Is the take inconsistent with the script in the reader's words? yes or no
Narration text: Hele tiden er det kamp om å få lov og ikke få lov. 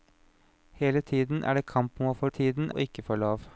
yes